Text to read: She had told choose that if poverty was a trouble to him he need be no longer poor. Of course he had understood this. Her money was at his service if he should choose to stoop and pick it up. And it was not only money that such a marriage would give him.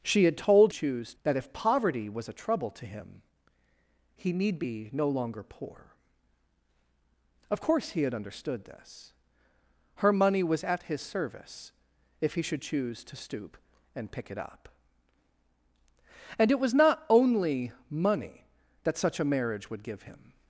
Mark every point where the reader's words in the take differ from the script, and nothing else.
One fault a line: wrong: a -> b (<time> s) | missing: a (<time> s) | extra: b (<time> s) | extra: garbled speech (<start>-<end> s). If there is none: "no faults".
no faults